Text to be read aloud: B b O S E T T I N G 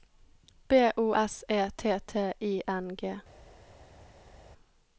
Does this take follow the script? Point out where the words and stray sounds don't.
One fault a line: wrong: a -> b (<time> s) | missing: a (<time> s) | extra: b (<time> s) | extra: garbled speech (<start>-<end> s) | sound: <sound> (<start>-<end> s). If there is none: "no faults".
missing: b (0.9 s)